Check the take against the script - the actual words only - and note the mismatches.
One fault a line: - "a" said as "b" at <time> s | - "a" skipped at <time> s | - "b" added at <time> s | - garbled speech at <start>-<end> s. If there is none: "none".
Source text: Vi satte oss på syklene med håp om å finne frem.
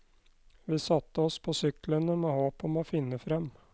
none